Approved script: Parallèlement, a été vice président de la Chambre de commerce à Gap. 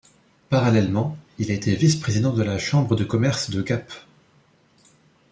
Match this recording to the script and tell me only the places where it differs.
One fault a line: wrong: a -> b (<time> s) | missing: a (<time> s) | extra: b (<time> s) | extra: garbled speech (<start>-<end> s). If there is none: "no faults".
extra: il (1.4 s)
wrong: à -> de (3.5 s)